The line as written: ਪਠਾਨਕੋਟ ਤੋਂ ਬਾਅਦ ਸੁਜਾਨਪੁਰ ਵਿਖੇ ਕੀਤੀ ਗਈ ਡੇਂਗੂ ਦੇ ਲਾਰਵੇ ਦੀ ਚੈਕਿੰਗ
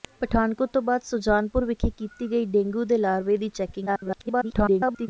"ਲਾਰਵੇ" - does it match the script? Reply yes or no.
yes